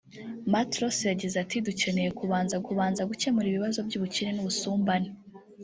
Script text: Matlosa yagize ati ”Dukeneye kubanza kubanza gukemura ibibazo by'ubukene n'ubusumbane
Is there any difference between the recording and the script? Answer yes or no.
no